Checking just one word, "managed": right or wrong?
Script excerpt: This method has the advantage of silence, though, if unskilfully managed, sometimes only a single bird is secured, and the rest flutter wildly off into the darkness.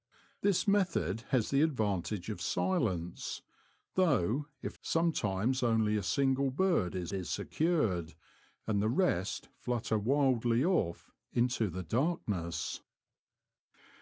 wrong